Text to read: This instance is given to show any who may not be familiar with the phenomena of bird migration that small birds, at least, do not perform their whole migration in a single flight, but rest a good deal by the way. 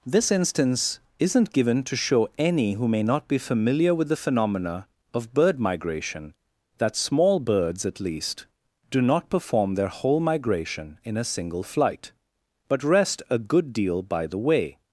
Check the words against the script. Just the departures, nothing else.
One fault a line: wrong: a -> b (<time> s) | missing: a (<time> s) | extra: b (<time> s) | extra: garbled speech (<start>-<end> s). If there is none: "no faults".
wrong: is -> isn't (1.2 s)